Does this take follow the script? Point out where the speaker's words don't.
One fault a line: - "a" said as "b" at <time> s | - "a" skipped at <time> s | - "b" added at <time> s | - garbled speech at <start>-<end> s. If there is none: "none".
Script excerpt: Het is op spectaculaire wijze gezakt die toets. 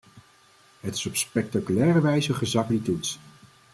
none